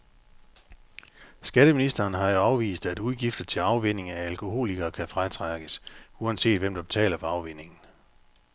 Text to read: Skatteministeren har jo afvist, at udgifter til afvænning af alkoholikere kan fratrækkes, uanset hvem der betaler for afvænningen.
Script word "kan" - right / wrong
right